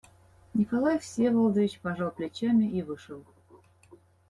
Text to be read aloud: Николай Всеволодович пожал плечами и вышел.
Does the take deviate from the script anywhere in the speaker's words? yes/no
no